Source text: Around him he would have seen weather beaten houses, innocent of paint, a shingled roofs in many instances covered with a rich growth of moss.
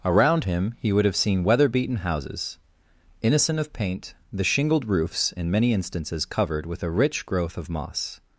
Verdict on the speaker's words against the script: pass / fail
fail